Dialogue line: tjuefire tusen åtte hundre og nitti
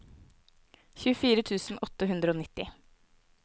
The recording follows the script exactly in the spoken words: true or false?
true